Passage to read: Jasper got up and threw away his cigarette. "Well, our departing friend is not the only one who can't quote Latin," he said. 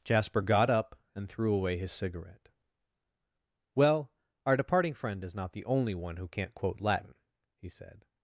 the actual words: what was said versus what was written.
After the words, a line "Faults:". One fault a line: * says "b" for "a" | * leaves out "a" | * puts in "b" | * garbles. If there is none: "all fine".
Jasper got up and threw away his cigarette. "Well, our departing friend is not the only one who can't quote Latin," he said.
Faults:
all fine